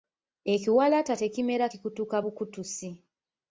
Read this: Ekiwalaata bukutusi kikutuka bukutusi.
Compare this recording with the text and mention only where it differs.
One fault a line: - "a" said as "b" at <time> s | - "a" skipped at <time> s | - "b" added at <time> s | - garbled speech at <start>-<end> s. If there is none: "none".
- "bukutusi" said as "tekimera" at 1.2 s